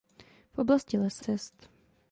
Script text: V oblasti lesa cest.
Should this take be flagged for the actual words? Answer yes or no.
no